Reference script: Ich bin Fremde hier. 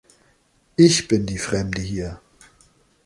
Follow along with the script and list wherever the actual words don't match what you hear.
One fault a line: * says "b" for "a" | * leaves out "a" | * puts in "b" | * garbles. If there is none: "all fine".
* puts in "die"